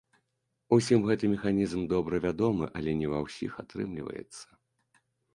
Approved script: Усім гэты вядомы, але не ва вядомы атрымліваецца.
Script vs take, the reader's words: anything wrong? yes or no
yes